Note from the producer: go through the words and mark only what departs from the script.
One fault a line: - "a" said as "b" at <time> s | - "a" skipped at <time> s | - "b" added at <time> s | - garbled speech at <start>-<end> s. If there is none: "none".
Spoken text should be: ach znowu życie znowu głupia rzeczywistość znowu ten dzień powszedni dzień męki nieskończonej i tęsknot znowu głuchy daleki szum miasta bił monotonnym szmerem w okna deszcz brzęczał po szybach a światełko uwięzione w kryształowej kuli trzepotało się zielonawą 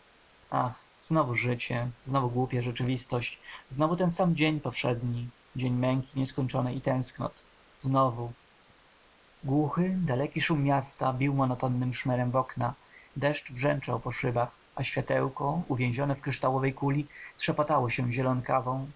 - "sam" added at 4.1 s